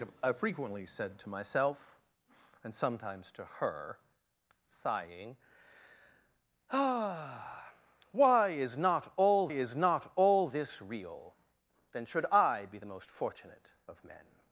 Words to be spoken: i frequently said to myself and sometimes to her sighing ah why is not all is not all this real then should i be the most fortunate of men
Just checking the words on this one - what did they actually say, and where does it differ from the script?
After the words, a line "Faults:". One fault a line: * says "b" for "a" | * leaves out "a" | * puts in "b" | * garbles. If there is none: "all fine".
i frequently said to myself and sometimes to her sighing ah why is not all is not all this real then should i be the most fortunate of men
Faults:
all fine